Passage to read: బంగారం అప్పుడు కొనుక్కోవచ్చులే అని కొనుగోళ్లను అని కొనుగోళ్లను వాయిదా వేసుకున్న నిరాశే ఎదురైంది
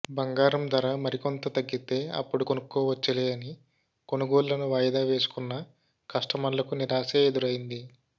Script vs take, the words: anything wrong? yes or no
yes